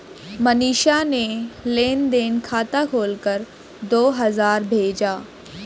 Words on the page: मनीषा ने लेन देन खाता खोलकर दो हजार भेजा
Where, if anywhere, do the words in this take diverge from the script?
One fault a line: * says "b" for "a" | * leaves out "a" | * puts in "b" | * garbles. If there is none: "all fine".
all fine